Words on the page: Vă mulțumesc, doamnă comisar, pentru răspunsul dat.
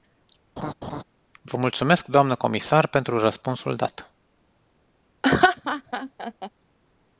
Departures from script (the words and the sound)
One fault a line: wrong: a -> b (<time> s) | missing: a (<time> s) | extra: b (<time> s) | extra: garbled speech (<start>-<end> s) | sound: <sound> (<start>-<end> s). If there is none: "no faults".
sound: laugh (0.6-1.0 s)
sound: laugh (5.2-6.5 s)